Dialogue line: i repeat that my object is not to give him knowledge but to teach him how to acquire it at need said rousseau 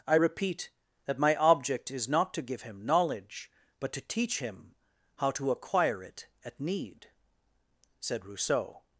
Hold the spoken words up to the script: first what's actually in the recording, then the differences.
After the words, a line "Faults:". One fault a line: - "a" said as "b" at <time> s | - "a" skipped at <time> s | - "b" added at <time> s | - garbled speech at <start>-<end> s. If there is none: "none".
i repeat that my object is not to give him knowledge but to teach him how to acquire it at need said rousseau
Faults:
none